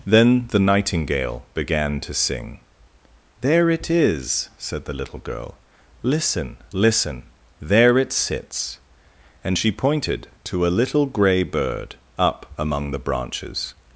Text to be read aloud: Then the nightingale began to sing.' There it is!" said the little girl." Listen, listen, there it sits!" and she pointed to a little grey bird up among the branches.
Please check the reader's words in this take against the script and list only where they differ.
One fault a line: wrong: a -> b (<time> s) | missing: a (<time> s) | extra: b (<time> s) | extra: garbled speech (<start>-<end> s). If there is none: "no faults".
no faults